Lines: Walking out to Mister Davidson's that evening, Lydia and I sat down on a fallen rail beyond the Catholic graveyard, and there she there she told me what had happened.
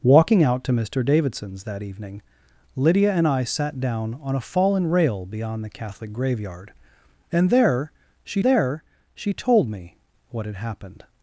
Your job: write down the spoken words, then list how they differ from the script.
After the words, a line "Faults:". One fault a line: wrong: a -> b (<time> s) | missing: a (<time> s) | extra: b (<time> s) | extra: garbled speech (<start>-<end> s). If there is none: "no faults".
Walking out to Mister Davidson's that evening, Lydia and I sat down on a fallen rail beyond the Catholic graveyard, and there she there she told me what had happened.
Faults:
no faults